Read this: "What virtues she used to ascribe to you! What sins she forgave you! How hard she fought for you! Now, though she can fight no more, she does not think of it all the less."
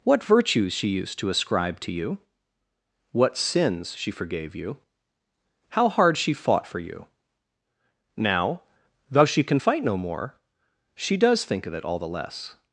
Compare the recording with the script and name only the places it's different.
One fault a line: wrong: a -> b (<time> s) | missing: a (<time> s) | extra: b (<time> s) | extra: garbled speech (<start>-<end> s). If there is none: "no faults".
missing: not (11.4 s)